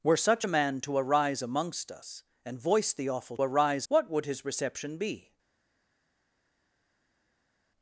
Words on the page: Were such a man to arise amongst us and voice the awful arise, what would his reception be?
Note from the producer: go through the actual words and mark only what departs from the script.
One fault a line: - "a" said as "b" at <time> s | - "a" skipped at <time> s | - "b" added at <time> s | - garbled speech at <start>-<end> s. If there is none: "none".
none